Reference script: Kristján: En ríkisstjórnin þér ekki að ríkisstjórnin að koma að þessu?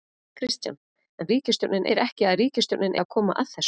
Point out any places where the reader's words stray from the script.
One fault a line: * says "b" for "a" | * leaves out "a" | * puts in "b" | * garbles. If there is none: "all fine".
all fine